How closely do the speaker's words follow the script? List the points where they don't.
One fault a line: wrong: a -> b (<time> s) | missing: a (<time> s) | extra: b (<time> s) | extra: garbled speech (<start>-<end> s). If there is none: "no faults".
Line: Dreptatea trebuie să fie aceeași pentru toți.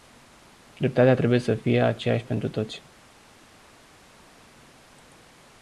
no faults